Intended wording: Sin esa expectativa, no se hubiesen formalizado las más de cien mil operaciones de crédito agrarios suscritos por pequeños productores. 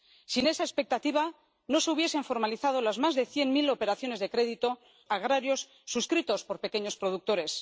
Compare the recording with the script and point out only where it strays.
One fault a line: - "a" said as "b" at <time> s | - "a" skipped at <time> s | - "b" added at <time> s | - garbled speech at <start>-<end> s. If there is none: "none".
none